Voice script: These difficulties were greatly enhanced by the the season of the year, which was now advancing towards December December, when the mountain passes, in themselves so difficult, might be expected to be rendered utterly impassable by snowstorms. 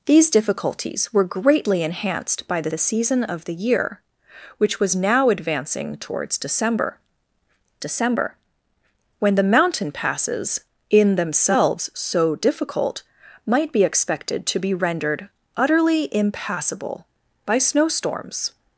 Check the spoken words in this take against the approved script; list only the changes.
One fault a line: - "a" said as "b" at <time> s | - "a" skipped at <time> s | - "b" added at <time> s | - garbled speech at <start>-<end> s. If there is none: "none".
none